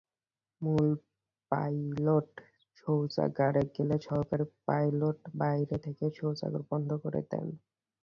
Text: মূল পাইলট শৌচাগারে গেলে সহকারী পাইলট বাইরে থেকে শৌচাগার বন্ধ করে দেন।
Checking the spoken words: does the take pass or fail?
pass